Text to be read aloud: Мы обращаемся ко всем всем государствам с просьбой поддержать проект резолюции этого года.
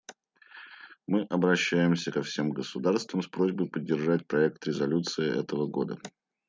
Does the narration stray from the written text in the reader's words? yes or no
yes